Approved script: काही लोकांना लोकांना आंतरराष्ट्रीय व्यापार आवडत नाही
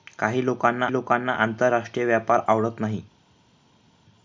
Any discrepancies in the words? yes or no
no